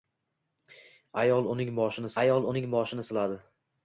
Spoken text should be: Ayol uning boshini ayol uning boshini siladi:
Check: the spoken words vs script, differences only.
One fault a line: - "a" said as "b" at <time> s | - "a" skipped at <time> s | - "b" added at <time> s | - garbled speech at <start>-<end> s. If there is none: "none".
none